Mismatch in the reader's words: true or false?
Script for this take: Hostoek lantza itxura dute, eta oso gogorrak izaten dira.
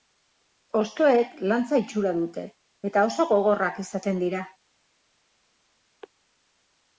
false